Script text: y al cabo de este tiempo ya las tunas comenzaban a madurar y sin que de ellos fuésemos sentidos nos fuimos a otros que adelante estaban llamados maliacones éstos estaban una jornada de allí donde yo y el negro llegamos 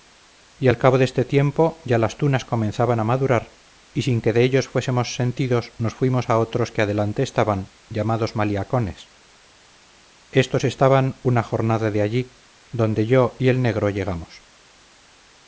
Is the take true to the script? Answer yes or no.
yes